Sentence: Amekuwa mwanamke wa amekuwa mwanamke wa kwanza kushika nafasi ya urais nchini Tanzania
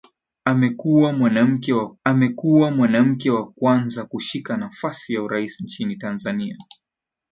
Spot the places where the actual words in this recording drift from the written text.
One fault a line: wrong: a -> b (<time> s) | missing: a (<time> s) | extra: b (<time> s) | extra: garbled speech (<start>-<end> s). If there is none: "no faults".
no faults